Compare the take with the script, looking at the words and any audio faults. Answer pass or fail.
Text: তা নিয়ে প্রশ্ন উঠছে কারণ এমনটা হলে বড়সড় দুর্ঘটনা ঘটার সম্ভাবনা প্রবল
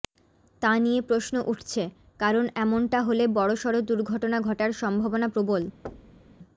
fail